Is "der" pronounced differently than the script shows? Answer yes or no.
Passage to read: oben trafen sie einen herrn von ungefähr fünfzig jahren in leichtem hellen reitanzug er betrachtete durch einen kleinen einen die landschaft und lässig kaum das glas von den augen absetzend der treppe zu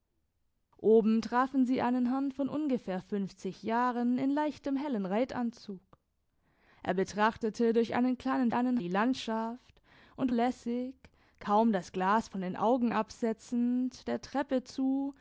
no